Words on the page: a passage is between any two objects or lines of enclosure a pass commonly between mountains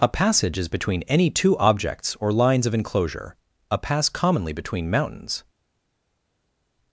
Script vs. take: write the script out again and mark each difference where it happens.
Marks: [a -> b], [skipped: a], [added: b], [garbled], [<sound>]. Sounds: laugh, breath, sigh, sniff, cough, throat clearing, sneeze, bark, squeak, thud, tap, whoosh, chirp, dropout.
a passage is between any two objects or lines of enclosure a pass commonly between mountains